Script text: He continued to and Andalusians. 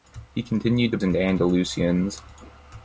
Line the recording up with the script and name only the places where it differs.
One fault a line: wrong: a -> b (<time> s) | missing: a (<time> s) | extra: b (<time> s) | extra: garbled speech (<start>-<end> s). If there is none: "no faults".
no faults